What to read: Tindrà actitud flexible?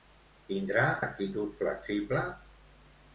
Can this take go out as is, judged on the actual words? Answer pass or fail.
pass